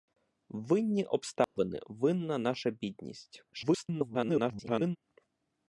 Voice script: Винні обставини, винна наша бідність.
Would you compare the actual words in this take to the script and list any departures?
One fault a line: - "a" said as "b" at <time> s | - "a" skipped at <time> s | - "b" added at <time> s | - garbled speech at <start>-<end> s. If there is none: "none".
- garbled speech at 3.5-5.0 s